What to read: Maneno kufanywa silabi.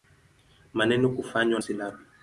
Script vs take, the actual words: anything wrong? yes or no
no